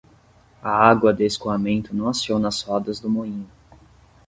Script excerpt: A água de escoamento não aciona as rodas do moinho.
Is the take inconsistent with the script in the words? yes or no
no